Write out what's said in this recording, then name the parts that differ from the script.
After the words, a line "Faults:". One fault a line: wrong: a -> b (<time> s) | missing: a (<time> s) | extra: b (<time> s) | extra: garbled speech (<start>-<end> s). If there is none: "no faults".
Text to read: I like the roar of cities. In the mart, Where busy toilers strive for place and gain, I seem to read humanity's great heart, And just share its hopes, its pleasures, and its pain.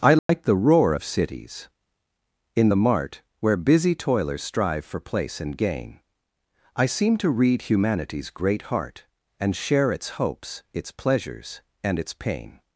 I like the roar of cities. In the mart, Where busy toilers strive for place and gain, I seem to read humanity's great heart, And share its hopes, its pleasures, and its pain.
Faults:
missing: just (9.6 s)